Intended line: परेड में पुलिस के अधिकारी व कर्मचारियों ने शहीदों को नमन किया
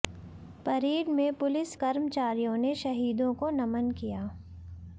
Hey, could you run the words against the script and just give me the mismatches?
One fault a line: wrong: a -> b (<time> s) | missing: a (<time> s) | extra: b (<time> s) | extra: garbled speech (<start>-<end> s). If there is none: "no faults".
missing: के अधिकारी व (1.8 s)